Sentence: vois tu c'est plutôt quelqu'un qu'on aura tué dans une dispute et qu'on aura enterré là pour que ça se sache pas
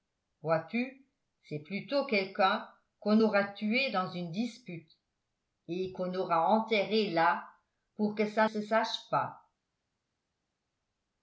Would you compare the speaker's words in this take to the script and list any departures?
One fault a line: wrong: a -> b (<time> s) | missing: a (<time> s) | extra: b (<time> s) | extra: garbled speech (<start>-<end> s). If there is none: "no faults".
no faults